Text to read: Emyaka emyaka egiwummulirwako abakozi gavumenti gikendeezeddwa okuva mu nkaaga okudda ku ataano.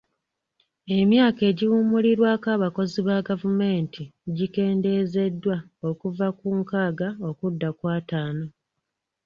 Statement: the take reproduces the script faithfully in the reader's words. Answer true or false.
false